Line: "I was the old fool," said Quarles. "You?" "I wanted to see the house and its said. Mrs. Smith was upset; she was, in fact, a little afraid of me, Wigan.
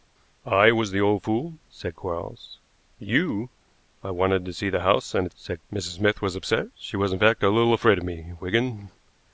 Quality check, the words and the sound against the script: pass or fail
pass